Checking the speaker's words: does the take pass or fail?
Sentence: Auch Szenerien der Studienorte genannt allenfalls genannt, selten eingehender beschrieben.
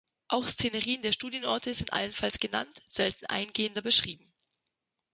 fail